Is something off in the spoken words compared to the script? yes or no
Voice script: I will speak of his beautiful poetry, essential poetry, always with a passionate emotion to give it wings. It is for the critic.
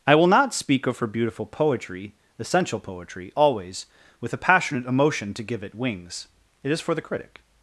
yes